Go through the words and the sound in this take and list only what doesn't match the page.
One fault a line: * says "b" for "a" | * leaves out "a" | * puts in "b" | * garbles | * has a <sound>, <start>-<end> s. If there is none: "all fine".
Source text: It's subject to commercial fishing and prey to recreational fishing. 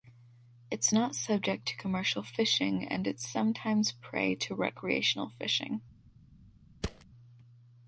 * puts in "not"
* puts in "it's sometimes"
* has a thud, 6.8-7.0 s